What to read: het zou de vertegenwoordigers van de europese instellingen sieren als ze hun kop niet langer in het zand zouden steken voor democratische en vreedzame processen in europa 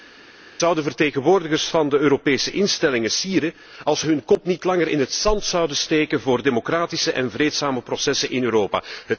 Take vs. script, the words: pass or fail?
pass